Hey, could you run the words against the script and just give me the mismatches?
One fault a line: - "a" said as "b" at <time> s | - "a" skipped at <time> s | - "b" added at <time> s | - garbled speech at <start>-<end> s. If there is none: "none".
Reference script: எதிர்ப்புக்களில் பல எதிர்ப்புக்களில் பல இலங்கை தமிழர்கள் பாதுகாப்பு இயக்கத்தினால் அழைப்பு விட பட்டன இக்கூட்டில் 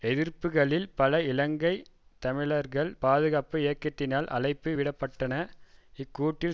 - "எதிர்ப்புக்களில் பல" skipped at 1.2 s